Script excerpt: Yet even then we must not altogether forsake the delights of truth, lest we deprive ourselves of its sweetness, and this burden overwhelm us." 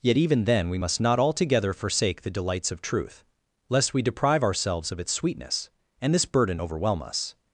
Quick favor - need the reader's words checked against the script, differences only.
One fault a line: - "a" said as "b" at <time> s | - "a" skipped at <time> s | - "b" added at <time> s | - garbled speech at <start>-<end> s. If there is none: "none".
none